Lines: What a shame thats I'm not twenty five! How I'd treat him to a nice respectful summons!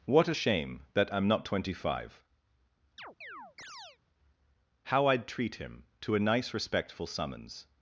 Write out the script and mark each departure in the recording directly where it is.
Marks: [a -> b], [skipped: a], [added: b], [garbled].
What a shame [thats -> that] I'm not twenty five! How I'd treat him to a nice respectful summons!